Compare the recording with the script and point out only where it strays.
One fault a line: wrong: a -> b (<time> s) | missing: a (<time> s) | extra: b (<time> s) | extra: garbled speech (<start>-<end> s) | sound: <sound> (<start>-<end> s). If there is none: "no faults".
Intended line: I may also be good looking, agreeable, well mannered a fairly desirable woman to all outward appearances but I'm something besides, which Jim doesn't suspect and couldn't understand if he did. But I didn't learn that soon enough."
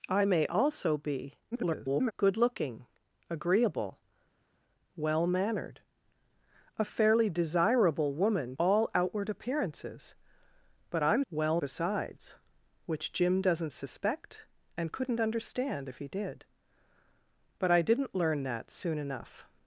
extra: garbled speech (1.5-2.1 s)
missing: to (8.6 s)
wrong: something -> well (11.3 s)